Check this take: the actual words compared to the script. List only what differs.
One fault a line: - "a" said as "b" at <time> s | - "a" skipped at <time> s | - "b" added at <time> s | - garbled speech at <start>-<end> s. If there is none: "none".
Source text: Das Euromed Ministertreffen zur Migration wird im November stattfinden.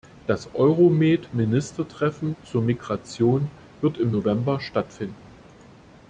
none